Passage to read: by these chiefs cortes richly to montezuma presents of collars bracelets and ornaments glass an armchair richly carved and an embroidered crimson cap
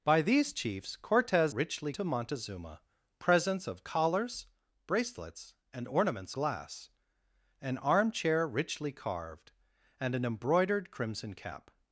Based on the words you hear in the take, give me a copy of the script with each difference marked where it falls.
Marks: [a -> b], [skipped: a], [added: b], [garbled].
by these chiefs cortes richly to montezuma presents of collars bracelets and ornaments glass an armchair richly carved and an embroidered crimson cap